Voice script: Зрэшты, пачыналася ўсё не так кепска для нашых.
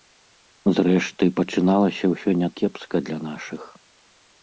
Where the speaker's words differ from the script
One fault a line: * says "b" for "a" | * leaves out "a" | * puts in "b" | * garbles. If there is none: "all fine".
* leaves out "так"